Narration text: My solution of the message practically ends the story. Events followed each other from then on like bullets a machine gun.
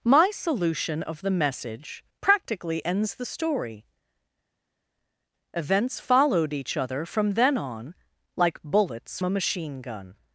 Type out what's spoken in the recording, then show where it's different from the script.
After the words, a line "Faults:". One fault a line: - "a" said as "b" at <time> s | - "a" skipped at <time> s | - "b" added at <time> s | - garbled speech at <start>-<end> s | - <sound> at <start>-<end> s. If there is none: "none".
My solution of the message practically ends the story. Events followed each other from then on like bullets a machine gun.
Faults:
none